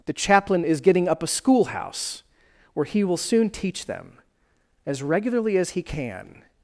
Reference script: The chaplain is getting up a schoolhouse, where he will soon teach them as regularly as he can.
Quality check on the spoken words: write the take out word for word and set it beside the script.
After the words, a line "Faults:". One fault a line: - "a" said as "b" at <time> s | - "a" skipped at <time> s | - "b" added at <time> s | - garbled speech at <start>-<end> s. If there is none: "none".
The chaplain is getting up a schoolhouse, where he will soon teach them as regularly as he can.
Faults:
none